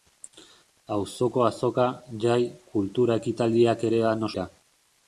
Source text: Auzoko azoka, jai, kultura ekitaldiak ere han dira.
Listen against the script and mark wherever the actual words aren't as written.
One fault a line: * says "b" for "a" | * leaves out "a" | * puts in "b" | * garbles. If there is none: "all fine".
all fine